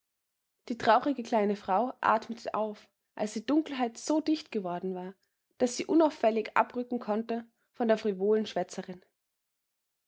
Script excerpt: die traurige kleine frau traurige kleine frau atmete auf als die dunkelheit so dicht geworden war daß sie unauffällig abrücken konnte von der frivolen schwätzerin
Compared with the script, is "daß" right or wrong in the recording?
right